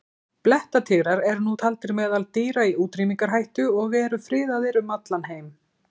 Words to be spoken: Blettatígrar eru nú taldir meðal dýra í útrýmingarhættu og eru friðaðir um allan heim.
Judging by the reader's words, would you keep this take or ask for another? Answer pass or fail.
pass